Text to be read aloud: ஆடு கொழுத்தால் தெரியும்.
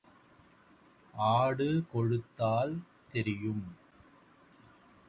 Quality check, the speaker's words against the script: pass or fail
pass